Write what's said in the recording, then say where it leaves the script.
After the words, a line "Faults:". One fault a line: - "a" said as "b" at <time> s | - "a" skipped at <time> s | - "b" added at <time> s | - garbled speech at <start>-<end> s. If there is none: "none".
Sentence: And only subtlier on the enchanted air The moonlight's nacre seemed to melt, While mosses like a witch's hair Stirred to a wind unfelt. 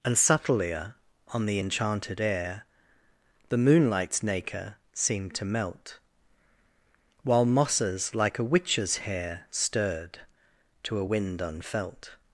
And subtlier on the enchanted air The moonlight's nacre seemed to melt, While mosses like a witch's hair Stirred to a wind unfelt.
Faults:
- "only" skipped at 0.1 s